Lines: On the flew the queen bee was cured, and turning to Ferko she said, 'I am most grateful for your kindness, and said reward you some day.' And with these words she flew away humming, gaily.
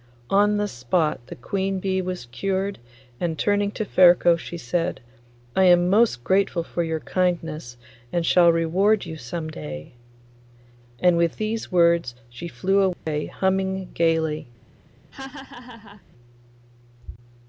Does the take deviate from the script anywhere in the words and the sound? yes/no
yes